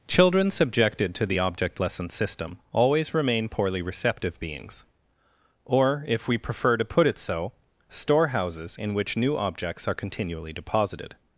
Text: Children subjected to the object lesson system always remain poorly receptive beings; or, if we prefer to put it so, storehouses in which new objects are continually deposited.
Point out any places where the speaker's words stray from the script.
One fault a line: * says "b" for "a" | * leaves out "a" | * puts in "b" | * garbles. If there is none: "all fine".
all fine